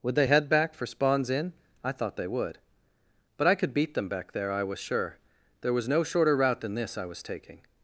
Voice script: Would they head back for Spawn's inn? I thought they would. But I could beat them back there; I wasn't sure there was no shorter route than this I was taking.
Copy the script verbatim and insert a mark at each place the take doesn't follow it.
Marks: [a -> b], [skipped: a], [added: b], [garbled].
Would they head back for Spawn's inn? I thought they would. But I could beat them back there; I [wasn't -> was] sure there was no shorter route than this I was taking.